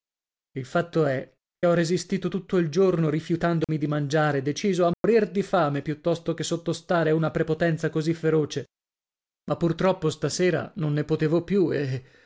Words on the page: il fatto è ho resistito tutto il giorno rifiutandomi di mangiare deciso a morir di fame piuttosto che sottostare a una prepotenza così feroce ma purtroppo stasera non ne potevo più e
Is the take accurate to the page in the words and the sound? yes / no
no